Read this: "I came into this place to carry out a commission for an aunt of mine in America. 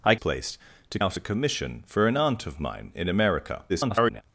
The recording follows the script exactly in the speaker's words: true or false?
false